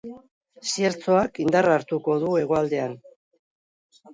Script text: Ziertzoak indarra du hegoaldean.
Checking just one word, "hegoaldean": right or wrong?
right